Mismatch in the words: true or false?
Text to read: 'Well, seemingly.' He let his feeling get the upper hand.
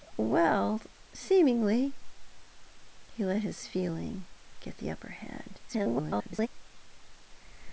true